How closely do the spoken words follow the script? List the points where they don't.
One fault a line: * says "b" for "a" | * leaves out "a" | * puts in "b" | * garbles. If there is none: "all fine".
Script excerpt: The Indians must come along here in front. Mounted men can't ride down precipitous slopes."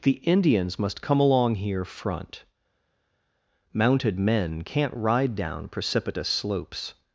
* leaves out "in"